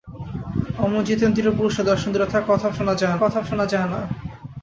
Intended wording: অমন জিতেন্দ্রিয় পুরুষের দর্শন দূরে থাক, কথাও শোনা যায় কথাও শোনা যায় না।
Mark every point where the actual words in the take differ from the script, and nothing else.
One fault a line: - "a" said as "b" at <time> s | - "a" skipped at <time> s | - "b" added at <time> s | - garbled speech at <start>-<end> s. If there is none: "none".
none